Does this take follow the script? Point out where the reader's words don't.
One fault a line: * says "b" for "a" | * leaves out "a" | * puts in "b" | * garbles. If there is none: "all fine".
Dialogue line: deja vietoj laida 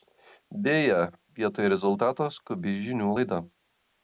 * puts in "rezultato skubi žinių"